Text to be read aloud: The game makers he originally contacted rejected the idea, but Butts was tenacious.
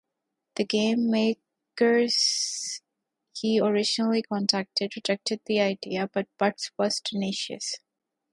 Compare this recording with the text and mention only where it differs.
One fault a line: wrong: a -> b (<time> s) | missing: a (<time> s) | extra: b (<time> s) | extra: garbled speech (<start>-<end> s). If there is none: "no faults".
no faults